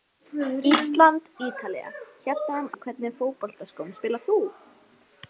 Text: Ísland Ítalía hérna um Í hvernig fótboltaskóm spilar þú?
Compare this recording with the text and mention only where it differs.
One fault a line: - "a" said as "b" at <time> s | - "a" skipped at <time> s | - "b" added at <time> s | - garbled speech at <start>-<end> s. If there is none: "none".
none